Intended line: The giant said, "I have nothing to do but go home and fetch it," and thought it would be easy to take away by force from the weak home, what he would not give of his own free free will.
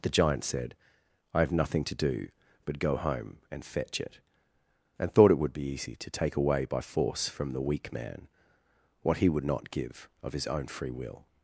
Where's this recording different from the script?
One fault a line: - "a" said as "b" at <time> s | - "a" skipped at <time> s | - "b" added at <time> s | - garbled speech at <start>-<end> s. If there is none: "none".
- "home" said as "man" at 7.9 s
- "free" skipped at 10.9 s